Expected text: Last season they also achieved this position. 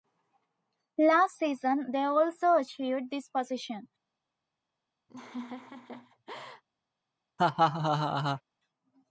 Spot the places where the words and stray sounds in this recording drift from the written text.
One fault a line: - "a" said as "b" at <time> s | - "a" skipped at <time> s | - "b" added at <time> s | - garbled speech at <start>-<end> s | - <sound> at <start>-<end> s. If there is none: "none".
- laugh at 5.1-6.6 s
- laugh at 7.4-8.4 s